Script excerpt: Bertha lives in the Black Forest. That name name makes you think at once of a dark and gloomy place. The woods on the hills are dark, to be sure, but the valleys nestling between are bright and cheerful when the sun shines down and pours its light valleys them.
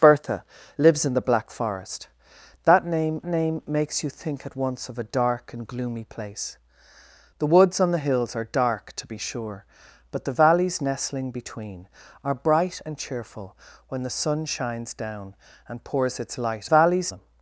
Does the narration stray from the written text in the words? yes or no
no